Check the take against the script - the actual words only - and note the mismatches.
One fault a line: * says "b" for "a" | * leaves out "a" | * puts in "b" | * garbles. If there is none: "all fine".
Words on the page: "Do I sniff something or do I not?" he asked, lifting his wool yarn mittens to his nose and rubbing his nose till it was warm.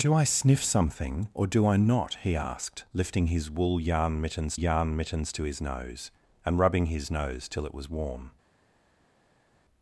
* puts in "yarn mittens"